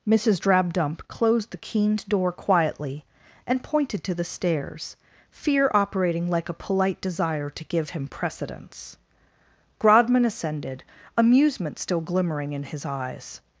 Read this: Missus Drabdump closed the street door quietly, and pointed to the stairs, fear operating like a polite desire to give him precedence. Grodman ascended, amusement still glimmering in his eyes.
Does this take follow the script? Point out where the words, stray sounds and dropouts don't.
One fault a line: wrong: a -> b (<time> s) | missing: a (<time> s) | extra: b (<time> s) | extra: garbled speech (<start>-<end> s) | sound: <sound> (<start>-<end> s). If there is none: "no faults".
wrong: street -> keened (1.6 s)